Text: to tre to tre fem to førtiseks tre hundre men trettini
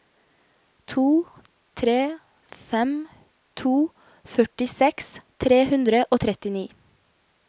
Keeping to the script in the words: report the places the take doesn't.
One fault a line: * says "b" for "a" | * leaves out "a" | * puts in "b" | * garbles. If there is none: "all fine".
* leaves out "to tre"
* says "og" for "men"